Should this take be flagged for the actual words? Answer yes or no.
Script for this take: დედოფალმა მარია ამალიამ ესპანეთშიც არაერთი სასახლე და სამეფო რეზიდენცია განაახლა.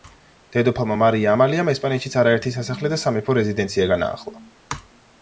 no